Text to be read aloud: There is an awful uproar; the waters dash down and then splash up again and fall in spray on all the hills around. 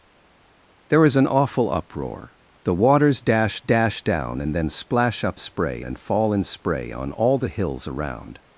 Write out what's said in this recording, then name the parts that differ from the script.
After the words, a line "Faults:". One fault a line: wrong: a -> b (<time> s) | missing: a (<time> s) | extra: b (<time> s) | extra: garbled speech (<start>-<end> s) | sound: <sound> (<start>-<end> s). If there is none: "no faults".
There is an awful uproar; the waters dash dash down and then splash up spray and fall in spray on all the hills around.
Faults:
extra: dash (3.6 s)
wrong: again -> spray (5.4 s)